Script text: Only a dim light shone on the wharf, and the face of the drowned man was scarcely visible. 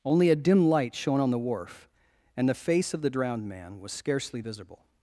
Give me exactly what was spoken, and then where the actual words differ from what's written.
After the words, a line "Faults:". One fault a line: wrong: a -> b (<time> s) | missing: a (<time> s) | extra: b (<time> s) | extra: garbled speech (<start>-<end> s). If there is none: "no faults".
Only a dim light shone on the wharf, and the face of the drowned man was scarcely visible.
Faults:
no faults